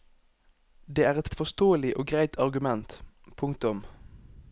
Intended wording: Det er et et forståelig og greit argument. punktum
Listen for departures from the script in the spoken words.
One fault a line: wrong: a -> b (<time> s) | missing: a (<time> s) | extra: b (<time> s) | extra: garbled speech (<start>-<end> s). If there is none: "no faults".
no faults